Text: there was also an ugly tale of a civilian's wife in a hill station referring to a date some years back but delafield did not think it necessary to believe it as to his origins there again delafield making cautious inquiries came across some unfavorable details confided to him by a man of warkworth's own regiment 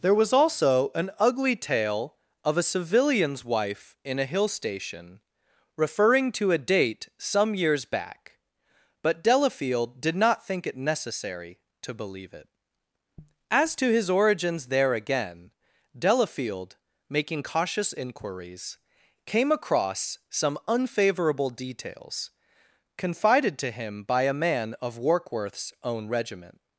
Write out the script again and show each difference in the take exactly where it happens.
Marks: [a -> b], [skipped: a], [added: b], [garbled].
there was also an ugly tale of a civilian's wife in a hill station referring to a date some years back but delafield did not think it necessary to believe it as to his origins there again delafield making cautious inquiries came across some unfavorable details confided to him by a man of warkworth's own regiment